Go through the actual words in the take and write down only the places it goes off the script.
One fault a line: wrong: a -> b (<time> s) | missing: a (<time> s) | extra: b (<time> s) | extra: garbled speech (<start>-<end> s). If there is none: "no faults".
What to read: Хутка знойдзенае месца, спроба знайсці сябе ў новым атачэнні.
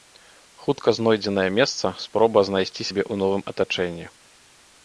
no faults